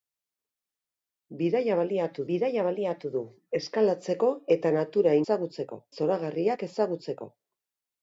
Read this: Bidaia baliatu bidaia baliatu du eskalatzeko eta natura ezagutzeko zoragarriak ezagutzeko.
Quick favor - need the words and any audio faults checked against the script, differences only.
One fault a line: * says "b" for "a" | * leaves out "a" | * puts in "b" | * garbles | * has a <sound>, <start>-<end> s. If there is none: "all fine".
all fine